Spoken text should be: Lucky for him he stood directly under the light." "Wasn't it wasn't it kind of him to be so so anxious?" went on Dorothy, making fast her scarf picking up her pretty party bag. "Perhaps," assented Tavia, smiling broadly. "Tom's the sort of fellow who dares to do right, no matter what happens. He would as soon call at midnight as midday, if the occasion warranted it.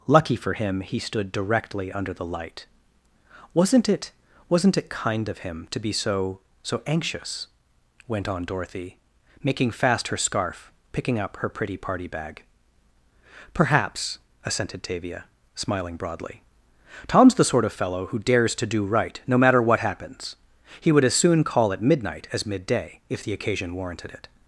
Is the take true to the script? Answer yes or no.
yes